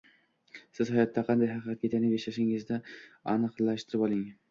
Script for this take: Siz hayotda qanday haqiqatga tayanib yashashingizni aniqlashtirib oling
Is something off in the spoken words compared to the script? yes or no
no